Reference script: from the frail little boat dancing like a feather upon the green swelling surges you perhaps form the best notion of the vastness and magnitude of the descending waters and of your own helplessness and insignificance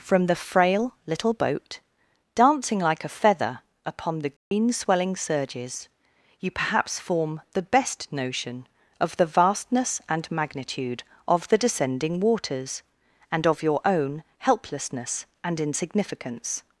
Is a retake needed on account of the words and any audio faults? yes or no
yes